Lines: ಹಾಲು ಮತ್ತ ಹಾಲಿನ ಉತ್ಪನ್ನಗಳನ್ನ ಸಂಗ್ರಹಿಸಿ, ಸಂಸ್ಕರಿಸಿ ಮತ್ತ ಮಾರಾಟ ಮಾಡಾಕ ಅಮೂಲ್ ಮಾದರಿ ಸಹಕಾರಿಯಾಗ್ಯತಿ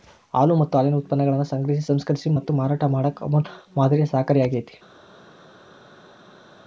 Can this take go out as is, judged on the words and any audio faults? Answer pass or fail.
pass